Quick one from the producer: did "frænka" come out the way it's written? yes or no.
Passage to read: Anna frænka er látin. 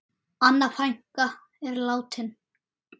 yes